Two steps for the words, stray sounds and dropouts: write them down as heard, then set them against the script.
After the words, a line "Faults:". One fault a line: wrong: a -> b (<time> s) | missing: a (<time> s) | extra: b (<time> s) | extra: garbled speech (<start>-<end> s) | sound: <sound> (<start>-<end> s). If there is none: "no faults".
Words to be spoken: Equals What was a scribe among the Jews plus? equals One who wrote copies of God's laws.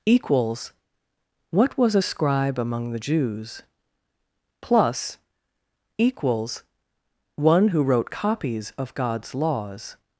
Equals What was a scribe among the Jews plus? equals One who wrote copies of God's laws.
Faults:
no faults